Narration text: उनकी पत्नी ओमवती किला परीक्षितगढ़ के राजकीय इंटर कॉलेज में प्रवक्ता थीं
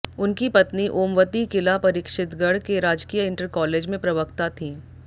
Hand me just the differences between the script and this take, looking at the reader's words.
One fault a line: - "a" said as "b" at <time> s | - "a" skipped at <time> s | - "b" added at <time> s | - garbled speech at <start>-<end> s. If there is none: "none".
none